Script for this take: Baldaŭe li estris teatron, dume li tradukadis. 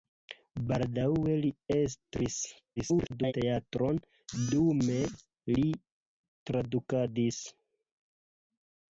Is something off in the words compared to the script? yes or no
yes